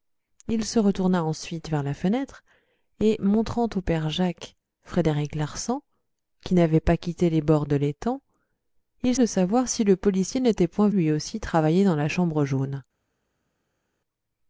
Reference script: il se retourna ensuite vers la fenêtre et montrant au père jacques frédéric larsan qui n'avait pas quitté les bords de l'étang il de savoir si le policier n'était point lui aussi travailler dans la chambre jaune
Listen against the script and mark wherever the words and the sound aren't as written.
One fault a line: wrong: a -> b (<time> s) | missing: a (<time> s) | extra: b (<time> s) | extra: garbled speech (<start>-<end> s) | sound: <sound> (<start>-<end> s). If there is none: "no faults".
no faults